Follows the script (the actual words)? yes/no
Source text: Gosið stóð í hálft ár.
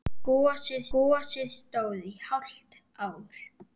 no